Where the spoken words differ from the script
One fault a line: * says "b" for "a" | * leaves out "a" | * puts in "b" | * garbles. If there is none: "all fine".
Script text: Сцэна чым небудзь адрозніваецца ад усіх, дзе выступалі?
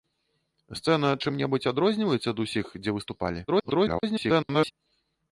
* garbles